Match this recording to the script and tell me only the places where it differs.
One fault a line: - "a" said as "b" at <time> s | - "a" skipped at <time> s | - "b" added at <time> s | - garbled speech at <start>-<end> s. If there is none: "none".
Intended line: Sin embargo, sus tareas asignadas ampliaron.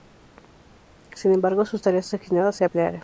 - "se" added at 2.5 s